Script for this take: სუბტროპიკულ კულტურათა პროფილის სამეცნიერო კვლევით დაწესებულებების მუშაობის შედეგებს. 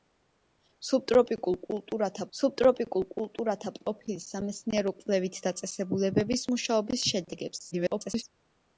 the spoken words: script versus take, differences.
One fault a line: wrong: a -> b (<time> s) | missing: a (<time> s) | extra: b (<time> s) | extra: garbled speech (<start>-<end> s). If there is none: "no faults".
extra: სუბტროპიკულ კულტურათა (2.4 s)
extra: garbled speech (7.7-8.2 s)